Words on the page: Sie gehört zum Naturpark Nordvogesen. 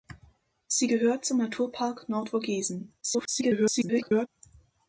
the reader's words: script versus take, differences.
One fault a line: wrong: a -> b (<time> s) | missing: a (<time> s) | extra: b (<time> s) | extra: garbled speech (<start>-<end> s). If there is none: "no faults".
extra: garbled speech (3.0-4.3 s)